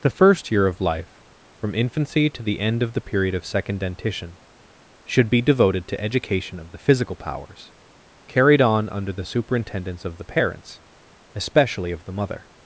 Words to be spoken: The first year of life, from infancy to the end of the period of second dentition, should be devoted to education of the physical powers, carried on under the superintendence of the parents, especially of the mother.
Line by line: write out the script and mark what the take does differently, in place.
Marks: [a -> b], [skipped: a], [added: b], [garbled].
The first year of life, from infancy to the end of the period of second dentition, should be devoted to education of the physical powers, carried on under the superintendence of the parents, especially of the mother.